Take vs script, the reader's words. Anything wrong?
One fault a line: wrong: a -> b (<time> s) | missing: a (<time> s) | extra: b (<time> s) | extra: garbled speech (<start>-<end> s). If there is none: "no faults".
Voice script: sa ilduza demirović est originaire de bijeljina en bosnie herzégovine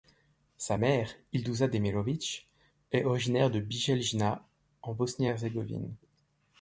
extra: mère (0.8 s)